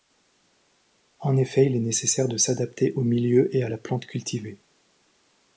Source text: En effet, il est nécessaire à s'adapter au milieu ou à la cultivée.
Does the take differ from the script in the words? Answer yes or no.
yes